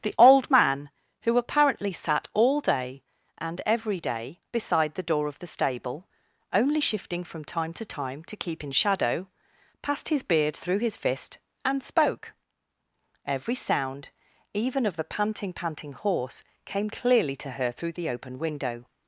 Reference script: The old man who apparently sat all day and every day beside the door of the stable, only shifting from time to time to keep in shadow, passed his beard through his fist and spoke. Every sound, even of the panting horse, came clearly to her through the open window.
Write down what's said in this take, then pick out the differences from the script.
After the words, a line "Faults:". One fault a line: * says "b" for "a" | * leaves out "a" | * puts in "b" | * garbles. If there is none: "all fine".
The old man who apparently sat all day and every day beside the door of the stable, only shifting from time to time to keep in shadow, passed his beard through his fist and spoke. Every sound, even of the panting panting horse, came clearly to her through the open window.
Faults:
* puts in "panting"